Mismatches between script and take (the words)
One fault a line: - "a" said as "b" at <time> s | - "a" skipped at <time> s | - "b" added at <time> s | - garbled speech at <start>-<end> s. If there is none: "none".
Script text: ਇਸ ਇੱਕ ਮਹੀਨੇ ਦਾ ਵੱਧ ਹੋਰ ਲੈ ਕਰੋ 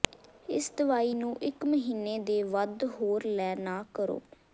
- "ਦਵਾਈ ਨੂੰ" added at 0.8 s
- "ਦਾ" said as "ਦੇ" at 2.2 s
- "ਨਾ" added at 3.6 s